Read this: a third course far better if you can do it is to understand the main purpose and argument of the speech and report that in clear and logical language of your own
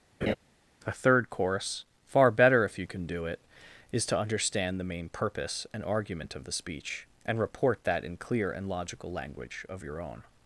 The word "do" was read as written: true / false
true